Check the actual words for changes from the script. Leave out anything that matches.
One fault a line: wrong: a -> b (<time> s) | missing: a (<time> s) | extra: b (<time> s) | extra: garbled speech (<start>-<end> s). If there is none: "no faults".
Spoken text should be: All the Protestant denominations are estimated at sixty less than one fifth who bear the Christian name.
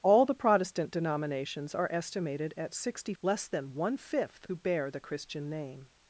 no faults